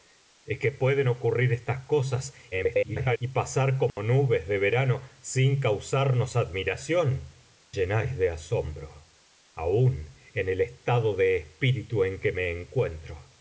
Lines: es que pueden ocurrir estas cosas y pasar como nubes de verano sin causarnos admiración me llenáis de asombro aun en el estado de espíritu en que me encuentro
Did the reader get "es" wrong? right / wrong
right